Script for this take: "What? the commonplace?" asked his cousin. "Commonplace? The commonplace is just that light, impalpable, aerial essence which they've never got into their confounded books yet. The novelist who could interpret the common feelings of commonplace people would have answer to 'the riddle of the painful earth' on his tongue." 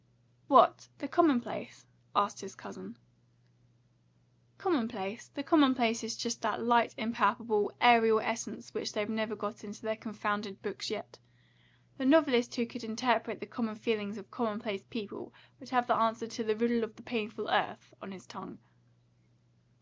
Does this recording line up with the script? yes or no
no